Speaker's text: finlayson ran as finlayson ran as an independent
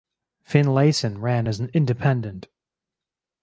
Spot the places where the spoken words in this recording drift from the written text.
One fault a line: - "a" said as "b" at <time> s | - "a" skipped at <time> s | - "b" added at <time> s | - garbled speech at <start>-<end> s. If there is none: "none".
- "finlayson ran as" skipped at 1.6 s